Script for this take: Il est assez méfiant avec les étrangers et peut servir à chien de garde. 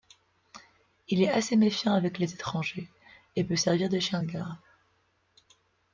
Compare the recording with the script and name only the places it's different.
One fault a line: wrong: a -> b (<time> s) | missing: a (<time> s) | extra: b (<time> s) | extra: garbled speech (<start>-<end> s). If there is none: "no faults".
wrong: à -> de (3.9 s)